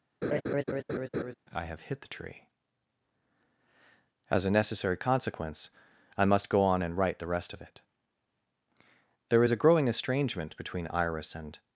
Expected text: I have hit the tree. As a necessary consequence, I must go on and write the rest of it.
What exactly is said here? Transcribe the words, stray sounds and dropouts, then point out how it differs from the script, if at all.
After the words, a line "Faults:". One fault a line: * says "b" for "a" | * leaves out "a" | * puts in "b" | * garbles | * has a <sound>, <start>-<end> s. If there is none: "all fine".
I have hit the tree. As a necessary consequence, I must go on and write the rest of it. There is a growing estrangement between Iris and
Faults:
* has a laugh, 0.2-1.3 s
* puts in "There is a growing estrangement between Iris and"